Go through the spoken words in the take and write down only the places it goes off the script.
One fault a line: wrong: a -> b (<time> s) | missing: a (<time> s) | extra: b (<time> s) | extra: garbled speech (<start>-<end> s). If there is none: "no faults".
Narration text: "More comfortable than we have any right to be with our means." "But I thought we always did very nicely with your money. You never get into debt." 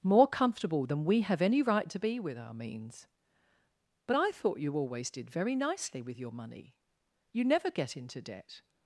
wrong: we -> you (4.6 s)